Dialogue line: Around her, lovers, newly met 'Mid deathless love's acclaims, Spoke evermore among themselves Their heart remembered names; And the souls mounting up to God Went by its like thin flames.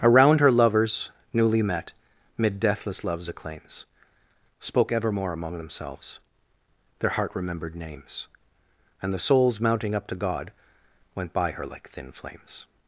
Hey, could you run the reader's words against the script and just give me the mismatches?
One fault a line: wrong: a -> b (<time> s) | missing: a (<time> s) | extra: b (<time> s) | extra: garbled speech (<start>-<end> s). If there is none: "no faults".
wrong: its -> her (11.5 s)